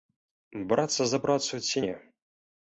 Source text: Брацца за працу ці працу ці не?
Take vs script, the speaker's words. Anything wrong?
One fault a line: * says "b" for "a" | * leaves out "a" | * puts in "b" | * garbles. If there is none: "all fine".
* leaves out "працу ці"